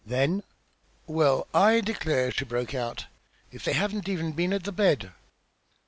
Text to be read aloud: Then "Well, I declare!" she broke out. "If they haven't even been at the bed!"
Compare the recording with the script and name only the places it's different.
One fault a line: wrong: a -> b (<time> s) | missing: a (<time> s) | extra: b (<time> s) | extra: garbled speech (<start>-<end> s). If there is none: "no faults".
no faults